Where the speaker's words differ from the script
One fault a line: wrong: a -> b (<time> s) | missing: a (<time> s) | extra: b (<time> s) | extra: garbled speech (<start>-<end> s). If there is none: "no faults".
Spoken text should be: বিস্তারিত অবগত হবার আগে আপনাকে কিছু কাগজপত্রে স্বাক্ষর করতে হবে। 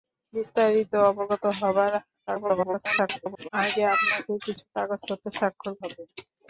extra: garbled speech (2.3-3.5 s)
missing: করতে (5.7 s)